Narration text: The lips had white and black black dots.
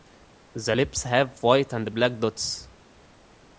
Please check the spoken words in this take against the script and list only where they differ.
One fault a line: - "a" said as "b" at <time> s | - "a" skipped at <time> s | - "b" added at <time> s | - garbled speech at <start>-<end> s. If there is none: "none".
- "had" said as "have" at 1.0 s
- "black" skipped at 2.2 s